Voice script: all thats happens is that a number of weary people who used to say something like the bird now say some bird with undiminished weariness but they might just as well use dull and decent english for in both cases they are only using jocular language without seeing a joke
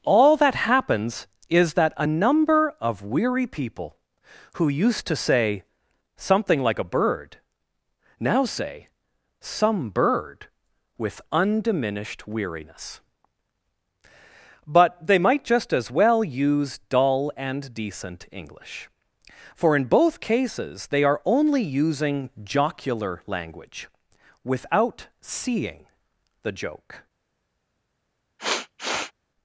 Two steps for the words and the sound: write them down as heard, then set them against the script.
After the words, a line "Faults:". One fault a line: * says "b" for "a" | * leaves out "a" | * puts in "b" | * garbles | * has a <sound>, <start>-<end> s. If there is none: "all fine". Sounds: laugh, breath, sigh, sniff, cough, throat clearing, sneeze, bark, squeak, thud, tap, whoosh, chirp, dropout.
all that happens is that a number of weary people who used to say something like a bird now say some bird with undiminished weariness but they might just as well use dull and decent english for in both cases they are only using jocular language without seeing the joke
Faults:
* says "that" for "thats"
* says "a" for "the"
* says "the" for "a"
* has a sniff, 28.4-29.1 s